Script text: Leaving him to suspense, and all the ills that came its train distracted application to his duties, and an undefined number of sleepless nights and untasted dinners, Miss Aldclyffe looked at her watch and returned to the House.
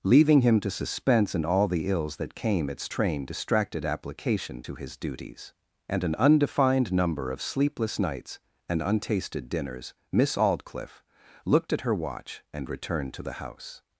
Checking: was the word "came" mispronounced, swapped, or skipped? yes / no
no